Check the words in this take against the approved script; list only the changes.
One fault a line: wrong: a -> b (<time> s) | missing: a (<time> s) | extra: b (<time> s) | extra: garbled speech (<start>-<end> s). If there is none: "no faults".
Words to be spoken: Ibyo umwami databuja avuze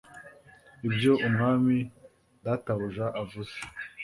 no faults